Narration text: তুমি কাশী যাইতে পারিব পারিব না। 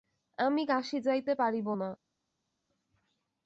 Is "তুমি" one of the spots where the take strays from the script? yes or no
yes